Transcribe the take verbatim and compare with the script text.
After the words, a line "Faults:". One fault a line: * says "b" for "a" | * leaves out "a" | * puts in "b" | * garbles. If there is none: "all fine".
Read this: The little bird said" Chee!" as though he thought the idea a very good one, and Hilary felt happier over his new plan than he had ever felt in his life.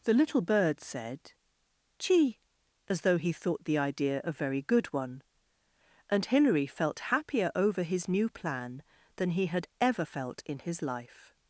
The little bird said" Chee!" as though he thought the idea a very good one, and Hilary felt happier over his new plan than he had ever felt in his life.
Faults:
all fine